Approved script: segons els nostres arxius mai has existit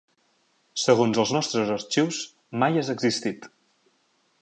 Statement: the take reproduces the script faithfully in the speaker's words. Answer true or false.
true